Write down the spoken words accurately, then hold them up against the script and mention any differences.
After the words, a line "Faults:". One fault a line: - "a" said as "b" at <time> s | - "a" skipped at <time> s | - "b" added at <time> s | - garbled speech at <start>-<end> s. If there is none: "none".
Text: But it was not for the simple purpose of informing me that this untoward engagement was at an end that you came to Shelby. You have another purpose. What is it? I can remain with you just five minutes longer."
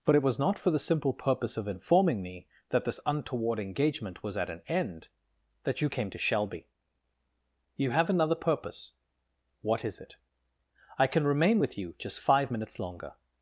But it was not for the simple purpose of informing me that this untoward engagement was at an end that you came to Shelby. You have another purpose. What is it? I can remain with you just five minutes longer."
Faults:
none